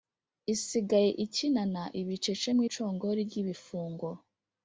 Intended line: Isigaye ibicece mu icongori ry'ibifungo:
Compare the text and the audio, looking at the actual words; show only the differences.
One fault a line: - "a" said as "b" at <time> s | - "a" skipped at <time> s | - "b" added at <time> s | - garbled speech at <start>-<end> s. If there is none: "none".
- "ikinana" added at 1.2 s